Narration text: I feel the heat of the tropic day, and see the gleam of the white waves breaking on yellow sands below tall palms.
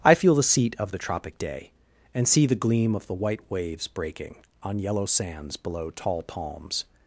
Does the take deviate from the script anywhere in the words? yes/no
yes